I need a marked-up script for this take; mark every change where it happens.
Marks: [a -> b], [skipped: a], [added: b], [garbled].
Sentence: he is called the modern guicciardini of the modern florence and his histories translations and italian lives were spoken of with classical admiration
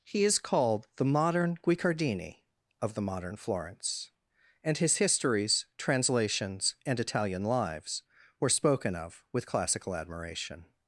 he is called the modern guicciardini of the modern florence and his histories translations and italian lives were spoken of with classical admiration